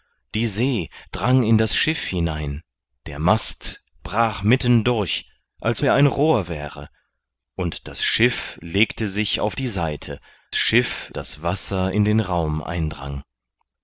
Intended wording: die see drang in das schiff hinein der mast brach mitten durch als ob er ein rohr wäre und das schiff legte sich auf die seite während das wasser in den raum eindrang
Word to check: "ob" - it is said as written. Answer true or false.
false